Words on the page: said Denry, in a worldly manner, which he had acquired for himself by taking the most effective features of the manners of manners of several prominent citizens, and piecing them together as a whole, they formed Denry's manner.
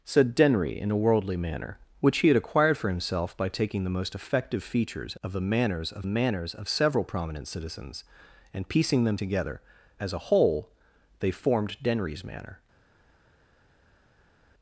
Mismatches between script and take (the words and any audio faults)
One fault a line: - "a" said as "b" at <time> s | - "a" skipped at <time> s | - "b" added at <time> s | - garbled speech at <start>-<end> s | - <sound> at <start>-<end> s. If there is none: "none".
none